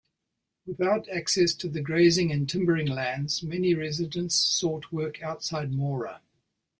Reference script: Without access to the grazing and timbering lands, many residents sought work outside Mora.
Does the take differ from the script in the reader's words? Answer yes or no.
no